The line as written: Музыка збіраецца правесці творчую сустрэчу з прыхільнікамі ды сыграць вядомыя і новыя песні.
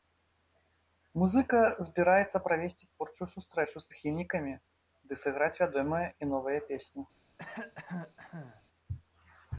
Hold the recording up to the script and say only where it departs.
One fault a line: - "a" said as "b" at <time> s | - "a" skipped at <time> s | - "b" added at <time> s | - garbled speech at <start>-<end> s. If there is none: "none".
none